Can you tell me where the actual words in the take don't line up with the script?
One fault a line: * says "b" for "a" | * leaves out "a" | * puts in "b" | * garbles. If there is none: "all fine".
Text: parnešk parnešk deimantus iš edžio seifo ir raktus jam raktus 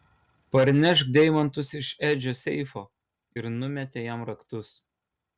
* leaves out "parnešk"
* says "numetė" for "raktus"